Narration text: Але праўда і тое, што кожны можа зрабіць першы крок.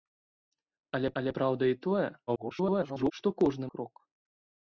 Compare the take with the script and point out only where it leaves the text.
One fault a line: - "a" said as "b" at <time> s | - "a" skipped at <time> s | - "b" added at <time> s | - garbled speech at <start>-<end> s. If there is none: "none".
- "але" added at 1.2 s
- garbled speech at 2.3-3.1 s
- "можа зрабіць першы" skipped at 3.7 s